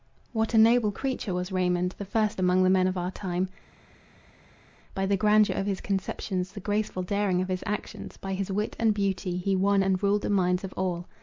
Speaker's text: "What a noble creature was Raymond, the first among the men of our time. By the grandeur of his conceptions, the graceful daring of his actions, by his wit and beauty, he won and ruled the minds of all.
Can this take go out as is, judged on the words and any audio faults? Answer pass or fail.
pass